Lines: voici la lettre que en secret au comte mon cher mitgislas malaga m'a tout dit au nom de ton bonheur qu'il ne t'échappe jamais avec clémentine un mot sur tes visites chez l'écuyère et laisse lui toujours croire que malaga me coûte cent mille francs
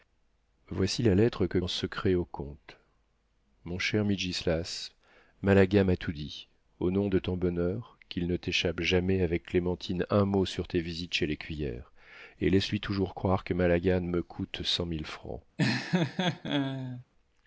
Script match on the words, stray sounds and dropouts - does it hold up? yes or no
no